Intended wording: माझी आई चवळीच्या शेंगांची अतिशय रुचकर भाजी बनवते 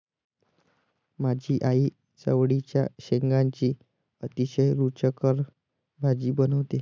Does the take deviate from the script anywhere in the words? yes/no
no